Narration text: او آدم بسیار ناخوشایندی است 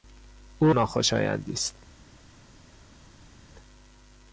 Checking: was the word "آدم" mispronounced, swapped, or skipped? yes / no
yes